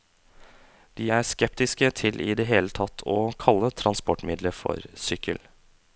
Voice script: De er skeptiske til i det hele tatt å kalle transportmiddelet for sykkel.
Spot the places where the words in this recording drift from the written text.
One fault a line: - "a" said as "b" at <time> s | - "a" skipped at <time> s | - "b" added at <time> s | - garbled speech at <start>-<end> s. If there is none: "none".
none